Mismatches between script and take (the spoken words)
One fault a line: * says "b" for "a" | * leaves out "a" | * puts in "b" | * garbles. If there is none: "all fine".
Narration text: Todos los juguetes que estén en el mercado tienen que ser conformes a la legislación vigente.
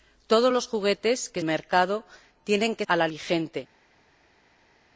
* leaves out "estén en el"
* leaves out "ser conformes"
* leaves out "legislación"